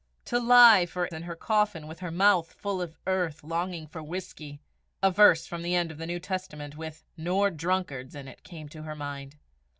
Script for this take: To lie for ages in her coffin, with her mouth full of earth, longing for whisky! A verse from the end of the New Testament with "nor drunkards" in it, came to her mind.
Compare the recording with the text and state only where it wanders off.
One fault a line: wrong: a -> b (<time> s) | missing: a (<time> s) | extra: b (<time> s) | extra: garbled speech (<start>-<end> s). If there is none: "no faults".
missing: ages (1.1 s)